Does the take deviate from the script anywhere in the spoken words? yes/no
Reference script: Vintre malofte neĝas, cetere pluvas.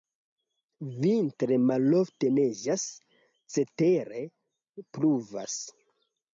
no